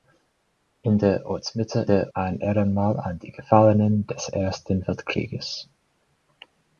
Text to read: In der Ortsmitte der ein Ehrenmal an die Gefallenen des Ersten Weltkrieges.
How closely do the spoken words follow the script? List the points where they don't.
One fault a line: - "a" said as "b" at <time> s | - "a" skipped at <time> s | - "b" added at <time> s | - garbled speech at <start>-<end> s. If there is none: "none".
none